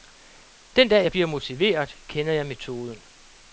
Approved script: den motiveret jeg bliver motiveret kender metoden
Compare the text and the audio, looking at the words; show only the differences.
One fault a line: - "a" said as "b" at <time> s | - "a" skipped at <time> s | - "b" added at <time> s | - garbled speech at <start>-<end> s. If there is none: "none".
- "motiveret" said as "dag" at 0.9 s
- "jeg" added at 2.3 s